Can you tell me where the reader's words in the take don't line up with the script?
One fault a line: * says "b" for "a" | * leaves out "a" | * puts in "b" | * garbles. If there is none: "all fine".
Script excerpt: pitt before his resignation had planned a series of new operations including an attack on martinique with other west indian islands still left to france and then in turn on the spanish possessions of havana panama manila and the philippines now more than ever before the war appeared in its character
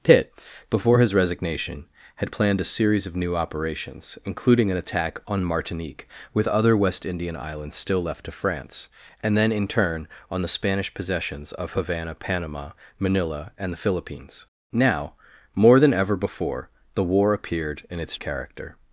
all fine